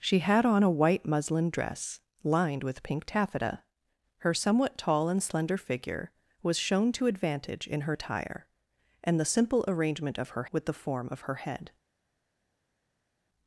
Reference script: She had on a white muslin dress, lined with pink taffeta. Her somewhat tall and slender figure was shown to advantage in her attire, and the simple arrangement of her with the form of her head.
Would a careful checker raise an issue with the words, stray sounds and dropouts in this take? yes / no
no